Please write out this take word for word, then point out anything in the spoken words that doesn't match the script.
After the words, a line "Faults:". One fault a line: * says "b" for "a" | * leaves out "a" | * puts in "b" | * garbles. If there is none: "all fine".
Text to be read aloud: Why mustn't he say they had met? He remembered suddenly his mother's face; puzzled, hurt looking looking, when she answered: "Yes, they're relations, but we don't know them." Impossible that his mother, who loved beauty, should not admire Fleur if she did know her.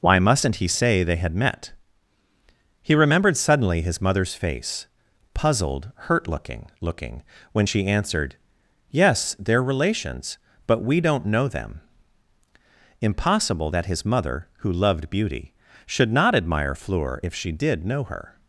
Why mustn't he say they had met? He remembered suddenly his mother's face; puzzled, hurt looking looking, when she answered: "Yes, they're relations, but we don't know them." Impossible that his mother, who loved beauty, should not admire Fleur if she did know her.
Faults:
all fine